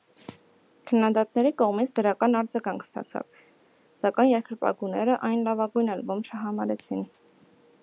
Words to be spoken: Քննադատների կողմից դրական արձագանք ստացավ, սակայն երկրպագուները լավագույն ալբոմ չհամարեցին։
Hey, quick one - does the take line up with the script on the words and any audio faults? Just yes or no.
no